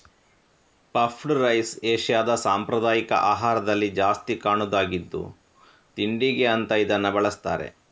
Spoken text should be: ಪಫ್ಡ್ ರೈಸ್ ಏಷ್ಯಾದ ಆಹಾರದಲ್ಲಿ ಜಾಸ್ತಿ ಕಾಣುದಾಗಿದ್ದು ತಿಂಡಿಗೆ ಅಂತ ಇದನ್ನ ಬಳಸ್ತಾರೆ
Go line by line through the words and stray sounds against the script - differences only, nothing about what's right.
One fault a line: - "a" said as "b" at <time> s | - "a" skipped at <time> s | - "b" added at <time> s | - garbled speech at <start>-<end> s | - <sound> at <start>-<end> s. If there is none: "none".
- "ಸಾಂಪ್ರದಾಯಿಕ" added at 2.4 s